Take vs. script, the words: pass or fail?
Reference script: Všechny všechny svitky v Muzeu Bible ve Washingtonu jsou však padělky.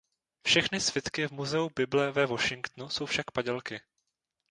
fail